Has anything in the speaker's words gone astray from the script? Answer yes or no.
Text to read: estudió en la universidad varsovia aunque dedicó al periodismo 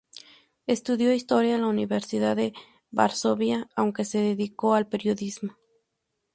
yes